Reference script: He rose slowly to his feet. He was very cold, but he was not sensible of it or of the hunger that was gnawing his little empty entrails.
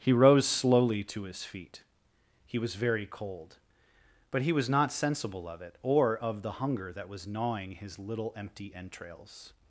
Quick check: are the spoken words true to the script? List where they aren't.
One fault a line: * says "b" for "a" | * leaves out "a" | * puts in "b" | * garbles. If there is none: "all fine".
all fine